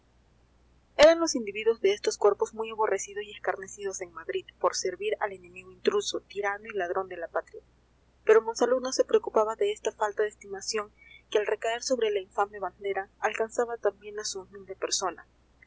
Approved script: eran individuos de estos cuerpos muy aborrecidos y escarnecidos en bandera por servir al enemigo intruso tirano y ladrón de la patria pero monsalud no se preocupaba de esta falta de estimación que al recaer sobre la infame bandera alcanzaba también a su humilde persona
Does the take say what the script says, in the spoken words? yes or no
no